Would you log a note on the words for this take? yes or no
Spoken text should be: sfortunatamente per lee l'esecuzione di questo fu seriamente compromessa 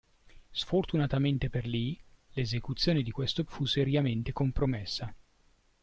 no